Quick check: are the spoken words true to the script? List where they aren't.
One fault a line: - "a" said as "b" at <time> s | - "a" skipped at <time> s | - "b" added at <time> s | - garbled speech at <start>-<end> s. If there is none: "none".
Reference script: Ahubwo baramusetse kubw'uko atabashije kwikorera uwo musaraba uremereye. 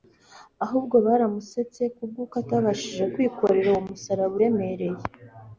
none